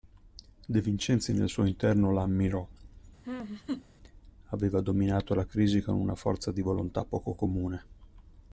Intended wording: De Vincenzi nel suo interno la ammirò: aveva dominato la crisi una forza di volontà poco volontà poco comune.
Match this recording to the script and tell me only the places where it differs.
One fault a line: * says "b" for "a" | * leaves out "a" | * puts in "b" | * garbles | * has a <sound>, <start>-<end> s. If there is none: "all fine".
* has a laugh, 3.2-3.9 s
* puts in "con"
* leaves out "volontà poco"